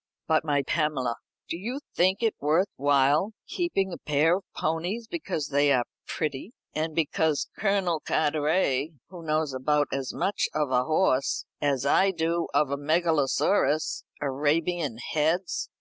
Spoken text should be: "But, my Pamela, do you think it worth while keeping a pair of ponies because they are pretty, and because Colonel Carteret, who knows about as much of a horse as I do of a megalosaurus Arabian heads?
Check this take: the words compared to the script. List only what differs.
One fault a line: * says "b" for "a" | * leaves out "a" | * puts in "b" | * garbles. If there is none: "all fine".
all fine